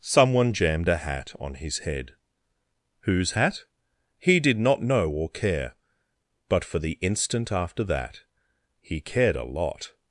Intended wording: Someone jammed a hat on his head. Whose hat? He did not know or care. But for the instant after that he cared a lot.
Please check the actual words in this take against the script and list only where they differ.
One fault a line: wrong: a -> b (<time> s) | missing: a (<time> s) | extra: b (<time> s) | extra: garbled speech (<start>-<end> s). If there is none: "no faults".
no faults